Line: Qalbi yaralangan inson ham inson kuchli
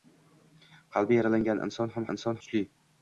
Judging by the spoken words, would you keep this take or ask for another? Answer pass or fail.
pass